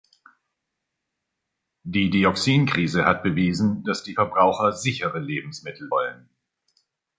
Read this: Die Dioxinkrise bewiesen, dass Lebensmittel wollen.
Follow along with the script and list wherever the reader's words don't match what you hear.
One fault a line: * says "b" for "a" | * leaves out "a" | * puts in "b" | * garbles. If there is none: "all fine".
* puts in "hat"
* puts in "die Verbraucher sichere"